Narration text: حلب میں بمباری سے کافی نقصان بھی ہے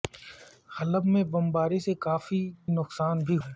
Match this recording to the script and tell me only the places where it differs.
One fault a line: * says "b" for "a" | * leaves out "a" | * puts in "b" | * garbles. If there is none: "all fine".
all fine